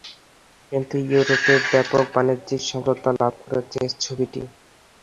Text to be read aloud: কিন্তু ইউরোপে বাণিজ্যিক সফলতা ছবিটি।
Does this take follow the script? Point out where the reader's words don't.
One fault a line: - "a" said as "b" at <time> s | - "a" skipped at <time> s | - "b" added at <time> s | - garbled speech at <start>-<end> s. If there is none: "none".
- "ব্যাপক" added at 1.7 s
- "লাভ করেছে" added at 3.2 s